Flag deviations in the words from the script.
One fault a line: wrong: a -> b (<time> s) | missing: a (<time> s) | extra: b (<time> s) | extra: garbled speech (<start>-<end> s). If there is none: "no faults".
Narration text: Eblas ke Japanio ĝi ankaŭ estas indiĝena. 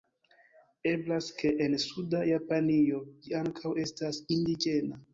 extra: en suda (1.7 s)